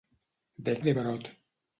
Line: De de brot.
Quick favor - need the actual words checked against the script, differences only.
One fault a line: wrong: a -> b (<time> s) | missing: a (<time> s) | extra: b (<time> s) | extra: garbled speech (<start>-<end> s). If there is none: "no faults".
no faults